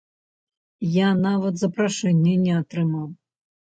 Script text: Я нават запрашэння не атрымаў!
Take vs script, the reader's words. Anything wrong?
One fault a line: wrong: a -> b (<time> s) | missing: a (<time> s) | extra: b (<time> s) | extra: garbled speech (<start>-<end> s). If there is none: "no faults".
no faults